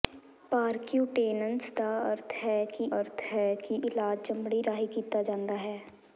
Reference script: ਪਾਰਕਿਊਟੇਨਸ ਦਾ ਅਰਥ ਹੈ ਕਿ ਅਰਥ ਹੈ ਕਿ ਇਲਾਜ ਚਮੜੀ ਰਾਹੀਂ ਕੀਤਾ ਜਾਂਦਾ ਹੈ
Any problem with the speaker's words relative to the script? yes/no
no